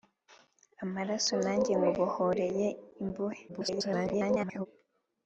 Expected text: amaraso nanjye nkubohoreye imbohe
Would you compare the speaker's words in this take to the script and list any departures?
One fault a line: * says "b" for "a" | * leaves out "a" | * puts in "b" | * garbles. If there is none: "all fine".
* garbles